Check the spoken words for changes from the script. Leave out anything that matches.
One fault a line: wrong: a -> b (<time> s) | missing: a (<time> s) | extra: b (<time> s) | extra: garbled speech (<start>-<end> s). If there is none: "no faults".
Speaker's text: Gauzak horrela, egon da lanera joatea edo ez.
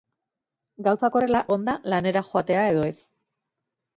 no faults